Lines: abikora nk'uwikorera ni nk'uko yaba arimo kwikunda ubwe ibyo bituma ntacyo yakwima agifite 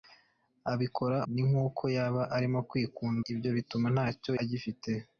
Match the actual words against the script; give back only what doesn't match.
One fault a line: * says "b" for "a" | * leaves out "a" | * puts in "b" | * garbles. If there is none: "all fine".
* leaves out "nk'uwikorera"
* leaves out "ubwe"
* leaves out "yakwima"